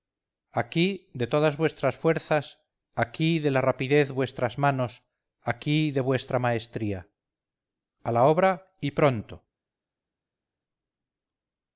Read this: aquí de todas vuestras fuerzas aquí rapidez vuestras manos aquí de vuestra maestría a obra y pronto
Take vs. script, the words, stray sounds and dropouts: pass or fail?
fail